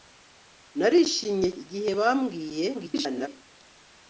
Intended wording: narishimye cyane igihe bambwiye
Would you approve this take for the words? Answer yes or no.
no